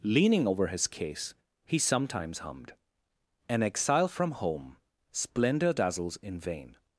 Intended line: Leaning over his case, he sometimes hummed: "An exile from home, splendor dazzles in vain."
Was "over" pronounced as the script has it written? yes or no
yes